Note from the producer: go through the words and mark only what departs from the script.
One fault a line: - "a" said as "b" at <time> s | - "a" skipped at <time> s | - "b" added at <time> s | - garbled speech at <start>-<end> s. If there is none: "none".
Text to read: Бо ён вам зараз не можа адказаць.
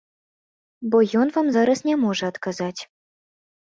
none